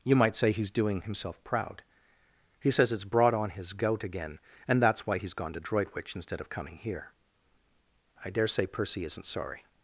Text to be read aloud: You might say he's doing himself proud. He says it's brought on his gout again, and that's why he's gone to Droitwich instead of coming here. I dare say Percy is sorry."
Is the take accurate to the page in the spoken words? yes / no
no